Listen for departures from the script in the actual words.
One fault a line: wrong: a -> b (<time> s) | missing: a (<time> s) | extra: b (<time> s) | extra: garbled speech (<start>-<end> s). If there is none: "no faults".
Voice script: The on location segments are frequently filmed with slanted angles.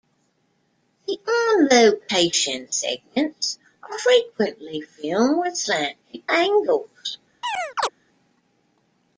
no faults